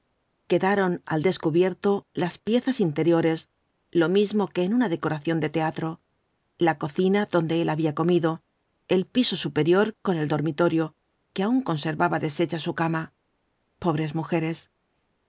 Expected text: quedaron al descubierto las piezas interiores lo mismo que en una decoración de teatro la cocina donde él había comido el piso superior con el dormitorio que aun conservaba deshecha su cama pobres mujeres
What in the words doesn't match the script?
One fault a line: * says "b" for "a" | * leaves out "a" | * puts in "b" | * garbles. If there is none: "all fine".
all fine